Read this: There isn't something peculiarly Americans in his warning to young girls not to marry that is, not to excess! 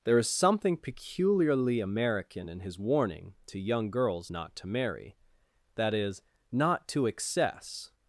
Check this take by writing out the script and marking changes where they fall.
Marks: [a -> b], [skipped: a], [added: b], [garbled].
There [isn't -> is] something peculiarly [Americans -> American] in his warning to young girls not to marry that is, not to excess!